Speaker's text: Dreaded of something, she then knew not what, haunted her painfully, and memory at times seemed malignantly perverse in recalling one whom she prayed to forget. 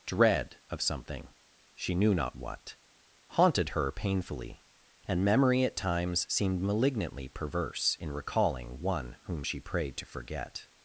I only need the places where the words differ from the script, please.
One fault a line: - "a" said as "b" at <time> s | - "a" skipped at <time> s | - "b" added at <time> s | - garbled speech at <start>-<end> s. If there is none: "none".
- "Dreaded" said as "Dread" at 0.1 s
- "then" skipped at 1.9 s